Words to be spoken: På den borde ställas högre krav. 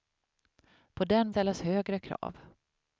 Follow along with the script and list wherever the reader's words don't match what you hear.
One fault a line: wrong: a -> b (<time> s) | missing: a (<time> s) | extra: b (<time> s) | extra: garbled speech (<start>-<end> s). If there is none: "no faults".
missing: borde (1.3 s)